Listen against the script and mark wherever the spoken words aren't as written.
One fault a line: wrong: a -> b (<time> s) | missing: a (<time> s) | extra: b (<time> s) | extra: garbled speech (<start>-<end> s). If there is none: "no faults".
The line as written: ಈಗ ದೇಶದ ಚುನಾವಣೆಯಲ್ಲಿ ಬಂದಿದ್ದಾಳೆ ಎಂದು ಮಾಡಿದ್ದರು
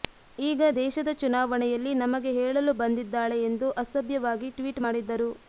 extra: ನಮಗೆ ಹೇಳಲು (2.0 s)
extra: ಅಸಭ್ಯವಾಗಿ ಟ್ವೀಟ್ (3.8 s)